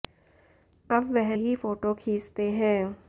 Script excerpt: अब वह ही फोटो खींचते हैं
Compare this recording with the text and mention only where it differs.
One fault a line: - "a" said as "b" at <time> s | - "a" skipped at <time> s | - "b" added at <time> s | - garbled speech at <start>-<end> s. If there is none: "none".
none